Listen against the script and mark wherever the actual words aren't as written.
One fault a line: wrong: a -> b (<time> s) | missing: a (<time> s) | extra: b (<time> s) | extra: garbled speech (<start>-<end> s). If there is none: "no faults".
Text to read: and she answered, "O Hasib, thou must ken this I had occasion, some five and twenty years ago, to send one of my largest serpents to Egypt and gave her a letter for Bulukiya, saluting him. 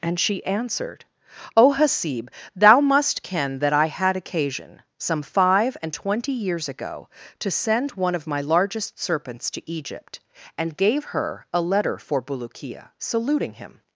wrong: this -> that (3.6 s)